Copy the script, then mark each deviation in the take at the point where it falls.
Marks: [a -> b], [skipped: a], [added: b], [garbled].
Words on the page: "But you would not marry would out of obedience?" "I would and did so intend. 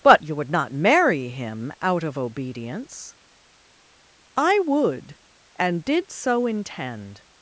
"But you would not marry [would -> him] out of obedience?" "I would and did so intend.